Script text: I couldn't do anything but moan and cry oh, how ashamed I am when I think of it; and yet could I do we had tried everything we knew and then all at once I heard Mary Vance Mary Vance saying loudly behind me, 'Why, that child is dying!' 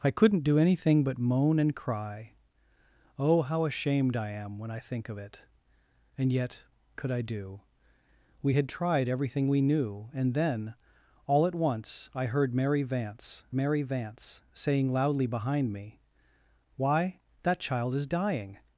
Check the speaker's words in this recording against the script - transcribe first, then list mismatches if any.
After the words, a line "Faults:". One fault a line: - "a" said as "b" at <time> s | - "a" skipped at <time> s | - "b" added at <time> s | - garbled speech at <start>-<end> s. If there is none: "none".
I couldn't do anything but moan and cry oh, how ashamed I am when I think of it; and yet could I do we had tried everything we knew and then all at once I heard Mary Vance Mary Vance saying loudly behind me, 'Why, that child is dying!'
Faults:
none